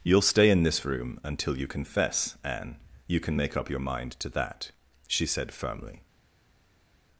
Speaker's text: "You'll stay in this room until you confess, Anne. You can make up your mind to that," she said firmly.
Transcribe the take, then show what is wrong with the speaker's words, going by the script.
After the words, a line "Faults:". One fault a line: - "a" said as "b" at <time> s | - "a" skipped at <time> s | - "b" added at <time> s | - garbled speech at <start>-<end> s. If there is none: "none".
"You'll stay in this room until you confess, Anne. You can make up your mind to that," she said firmly.
Faults:
none